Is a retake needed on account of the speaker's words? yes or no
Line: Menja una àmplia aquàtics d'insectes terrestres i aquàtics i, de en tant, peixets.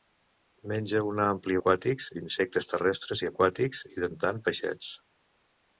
no